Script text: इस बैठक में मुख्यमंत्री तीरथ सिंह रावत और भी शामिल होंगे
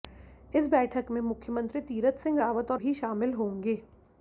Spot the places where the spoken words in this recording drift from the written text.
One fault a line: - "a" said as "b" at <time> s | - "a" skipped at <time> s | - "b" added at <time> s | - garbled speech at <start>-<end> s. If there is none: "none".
none